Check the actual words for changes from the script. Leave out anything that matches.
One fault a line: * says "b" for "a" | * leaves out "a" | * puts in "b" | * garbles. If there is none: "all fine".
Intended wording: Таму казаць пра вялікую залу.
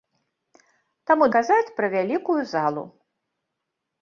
all fine